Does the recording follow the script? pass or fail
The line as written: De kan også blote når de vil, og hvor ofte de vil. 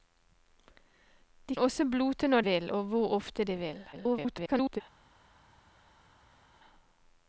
fail